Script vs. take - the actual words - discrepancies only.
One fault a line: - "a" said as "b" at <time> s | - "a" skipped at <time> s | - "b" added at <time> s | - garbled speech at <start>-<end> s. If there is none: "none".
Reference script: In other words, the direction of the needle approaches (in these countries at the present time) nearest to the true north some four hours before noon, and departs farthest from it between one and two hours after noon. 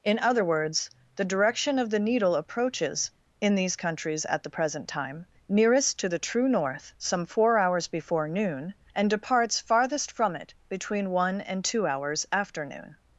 none